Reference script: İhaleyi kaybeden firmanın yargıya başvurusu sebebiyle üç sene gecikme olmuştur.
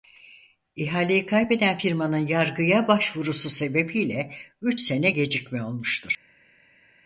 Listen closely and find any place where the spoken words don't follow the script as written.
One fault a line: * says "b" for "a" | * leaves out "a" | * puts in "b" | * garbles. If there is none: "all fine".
all fine